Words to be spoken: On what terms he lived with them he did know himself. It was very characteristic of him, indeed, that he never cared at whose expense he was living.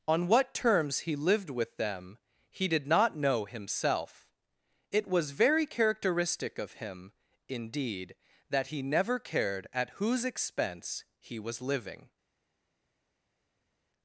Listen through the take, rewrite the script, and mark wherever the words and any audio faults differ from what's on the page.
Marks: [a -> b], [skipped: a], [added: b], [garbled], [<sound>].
On what terms he lived with them he did [added: not] know himself. It was very characteristic of him, indeed, that he never cared at whose expense he was living.